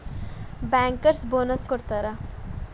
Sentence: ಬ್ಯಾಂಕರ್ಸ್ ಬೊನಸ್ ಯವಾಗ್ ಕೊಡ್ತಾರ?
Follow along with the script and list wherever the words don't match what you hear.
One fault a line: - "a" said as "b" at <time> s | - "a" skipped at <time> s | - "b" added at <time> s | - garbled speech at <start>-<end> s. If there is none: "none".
- "ಯವಾಗ್" skipped at 1.7 s